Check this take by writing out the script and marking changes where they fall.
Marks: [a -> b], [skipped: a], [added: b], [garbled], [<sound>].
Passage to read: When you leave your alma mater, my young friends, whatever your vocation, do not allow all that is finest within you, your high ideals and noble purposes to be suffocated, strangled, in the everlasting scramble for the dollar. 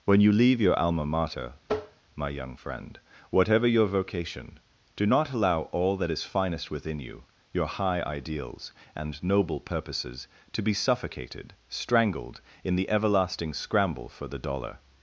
When you leave your alma mater, [tap] my young [friends, -> friend] whatever your vocation, do not allow all that is finest within you, your high ideals and noble purposes to be suffocated, strangled, in the everlasting scramble for the dollar.